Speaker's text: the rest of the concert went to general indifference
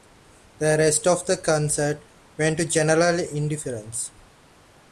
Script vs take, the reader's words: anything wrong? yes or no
no